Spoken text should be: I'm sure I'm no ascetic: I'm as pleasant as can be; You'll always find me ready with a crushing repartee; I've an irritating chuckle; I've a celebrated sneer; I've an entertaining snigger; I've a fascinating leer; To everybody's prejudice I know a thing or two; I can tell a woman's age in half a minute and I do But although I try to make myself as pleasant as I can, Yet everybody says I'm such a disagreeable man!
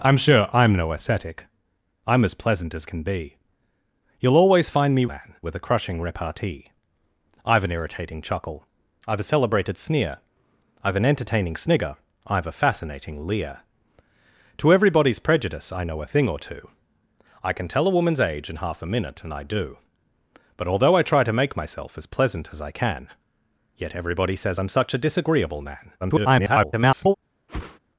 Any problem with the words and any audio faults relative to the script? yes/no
yes